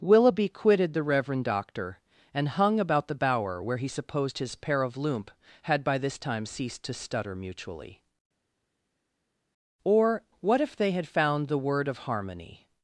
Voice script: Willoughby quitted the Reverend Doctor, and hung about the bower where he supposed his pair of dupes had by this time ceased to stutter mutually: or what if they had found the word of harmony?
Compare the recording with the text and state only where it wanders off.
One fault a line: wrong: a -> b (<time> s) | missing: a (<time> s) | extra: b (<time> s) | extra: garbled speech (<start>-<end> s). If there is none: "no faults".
wrong: dupes -> loomp (5.0 s)